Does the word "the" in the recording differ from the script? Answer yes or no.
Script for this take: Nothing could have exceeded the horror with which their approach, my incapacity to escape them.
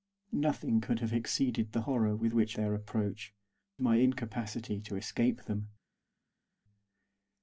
no